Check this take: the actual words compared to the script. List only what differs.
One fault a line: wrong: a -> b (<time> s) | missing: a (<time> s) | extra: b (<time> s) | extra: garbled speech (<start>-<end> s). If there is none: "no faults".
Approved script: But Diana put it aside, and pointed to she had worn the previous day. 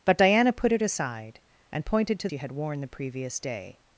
no faults